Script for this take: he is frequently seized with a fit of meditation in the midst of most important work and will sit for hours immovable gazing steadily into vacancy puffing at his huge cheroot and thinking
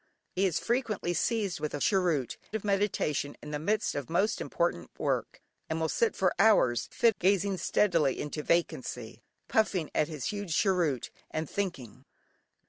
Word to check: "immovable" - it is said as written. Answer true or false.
false